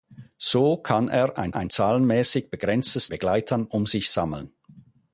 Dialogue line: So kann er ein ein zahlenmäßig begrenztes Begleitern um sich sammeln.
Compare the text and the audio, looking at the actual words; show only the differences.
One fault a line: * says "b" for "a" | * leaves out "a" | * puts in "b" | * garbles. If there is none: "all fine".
all fine